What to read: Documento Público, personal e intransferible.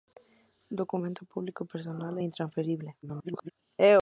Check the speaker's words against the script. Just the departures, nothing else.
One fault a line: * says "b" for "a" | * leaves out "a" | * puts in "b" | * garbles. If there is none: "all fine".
* garbles